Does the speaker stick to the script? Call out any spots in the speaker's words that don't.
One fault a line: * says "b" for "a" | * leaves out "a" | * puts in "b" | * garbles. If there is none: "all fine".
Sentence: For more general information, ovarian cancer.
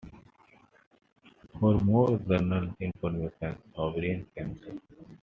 all fine